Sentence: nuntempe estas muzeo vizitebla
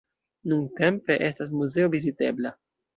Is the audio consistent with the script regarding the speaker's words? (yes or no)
yes